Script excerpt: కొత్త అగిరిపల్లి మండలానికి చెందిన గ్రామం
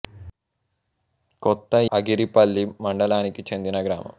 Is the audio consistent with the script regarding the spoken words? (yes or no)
yes